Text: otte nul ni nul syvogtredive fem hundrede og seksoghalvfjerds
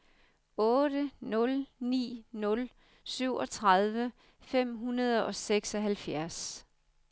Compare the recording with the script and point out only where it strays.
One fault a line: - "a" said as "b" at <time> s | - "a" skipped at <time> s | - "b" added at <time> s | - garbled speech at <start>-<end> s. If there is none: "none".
none